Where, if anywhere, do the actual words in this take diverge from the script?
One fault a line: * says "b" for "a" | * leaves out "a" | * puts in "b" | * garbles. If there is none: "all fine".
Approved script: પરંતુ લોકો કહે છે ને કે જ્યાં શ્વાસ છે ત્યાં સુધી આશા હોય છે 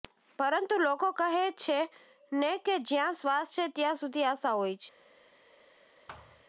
all fine